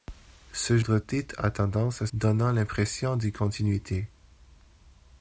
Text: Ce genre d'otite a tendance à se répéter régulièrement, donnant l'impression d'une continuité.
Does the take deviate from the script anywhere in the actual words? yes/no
yes